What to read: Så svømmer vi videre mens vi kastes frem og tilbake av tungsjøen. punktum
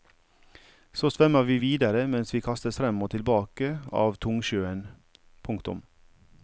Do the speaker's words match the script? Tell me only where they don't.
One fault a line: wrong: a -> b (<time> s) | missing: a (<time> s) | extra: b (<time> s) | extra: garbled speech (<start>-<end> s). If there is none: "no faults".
no faults